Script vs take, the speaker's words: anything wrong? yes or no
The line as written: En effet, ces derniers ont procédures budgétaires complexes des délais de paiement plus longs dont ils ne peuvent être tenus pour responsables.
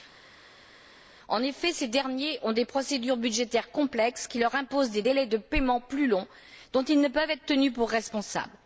yes